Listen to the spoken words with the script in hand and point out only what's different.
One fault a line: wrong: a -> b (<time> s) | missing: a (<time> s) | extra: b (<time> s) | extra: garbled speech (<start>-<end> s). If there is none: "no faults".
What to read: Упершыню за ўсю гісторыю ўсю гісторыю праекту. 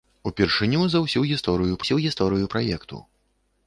no faults